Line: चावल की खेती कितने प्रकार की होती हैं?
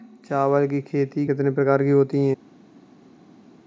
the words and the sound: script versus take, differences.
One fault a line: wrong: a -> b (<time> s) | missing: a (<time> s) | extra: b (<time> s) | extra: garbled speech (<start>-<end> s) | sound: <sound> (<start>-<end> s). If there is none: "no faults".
no faults